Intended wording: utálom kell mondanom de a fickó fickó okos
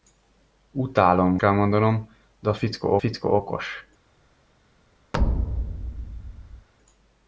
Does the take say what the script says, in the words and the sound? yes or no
no